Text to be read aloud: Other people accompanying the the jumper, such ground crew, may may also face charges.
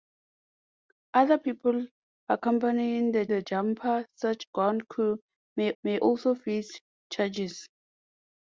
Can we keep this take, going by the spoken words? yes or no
yes